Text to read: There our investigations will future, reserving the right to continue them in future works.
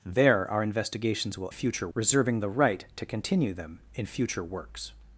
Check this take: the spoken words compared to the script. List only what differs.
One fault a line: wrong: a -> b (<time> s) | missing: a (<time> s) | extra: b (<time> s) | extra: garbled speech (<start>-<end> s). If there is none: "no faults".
no faults